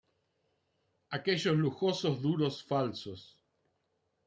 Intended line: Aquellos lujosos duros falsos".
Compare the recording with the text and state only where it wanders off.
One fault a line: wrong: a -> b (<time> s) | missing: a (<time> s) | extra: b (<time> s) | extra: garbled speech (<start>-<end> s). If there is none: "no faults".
no faults